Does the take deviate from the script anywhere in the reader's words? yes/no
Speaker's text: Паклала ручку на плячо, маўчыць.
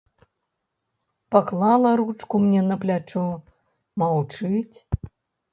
yes